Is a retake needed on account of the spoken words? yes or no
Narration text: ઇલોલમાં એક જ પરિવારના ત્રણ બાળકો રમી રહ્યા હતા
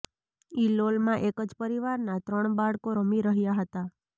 no